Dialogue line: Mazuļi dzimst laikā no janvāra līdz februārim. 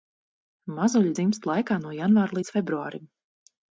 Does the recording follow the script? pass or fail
pass